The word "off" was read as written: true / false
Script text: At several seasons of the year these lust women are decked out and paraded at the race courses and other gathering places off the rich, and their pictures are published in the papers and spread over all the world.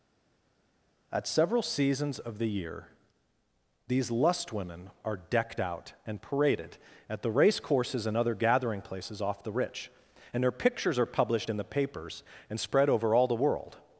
true